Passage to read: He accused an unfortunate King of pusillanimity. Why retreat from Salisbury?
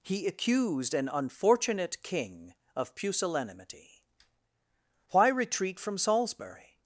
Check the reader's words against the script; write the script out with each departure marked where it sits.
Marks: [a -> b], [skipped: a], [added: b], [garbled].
He accused an unfortunate King of pusillanimity. Why retreat from Salisbury?